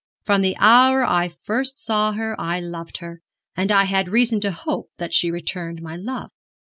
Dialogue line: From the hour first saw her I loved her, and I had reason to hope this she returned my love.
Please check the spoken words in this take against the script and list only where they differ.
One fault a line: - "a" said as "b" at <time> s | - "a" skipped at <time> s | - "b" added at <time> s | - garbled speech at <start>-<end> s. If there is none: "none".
- "I" added at 1.1 s
- "this" said as "that" at 5.0 s